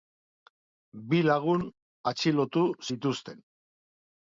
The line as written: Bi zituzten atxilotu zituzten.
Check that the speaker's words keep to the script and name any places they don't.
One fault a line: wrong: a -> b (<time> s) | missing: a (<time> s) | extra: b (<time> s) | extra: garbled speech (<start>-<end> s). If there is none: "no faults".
wrong: zituzten -> lagun (1.3 s)